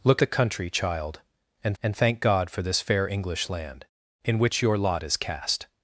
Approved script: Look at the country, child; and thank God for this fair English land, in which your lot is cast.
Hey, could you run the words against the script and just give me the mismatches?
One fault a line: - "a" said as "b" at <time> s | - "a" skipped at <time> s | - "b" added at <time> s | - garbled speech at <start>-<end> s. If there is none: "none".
- "at" skipped at 0.2 s
- "and" added at 1.8 s